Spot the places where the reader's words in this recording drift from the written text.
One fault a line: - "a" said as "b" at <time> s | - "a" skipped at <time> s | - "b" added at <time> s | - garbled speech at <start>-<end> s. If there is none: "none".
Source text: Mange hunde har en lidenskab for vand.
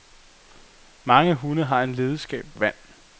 - "for" skipped at 2.5 s